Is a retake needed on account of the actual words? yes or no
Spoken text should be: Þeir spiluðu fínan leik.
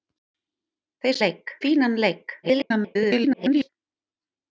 yes